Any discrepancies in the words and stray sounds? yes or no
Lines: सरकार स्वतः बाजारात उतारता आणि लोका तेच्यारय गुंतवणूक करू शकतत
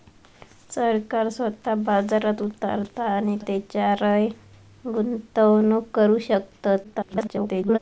yes